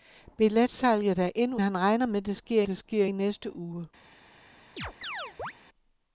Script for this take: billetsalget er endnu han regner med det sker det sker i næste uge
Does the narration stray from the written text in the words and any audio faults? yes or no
yes